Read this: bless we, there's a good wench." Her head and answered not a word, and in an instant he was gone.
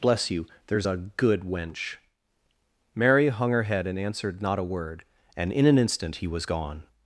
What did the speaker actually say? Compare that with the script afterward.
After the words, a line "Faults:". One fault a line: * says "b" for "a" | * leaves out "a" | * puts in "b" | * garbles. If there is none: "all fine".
bless you, there's a good wench." Mary hung her head and answered not a word, and in an instant he was gone.
Faults:
* says "you" for "we"
* puts in "Mary hung"